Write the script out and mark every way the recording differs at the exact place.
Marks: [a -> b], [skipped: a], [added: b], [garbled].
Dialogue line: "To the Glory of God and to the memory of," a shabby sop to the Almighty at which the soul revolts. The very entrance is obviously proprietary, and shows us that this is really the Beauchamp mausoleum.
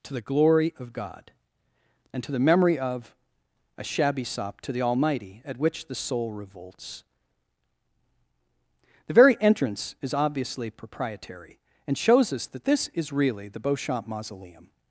"To the Glory of God and to the memory of," a shabby sop to the Almighty at which the soul revolts. The very entrance is obviously proprietary, and shows us that this is really the Beauchamp mausoleum.